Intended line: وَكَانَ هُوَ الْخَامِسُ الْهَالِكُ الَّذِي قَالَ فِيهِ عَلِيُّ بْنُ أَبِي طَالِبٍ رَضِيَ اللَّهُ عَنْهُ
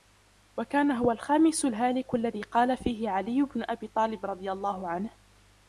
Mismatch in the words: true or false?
false